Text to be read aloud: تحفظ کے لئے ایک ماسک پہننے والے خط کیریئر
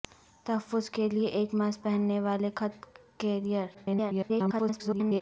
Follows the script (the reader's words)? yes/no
no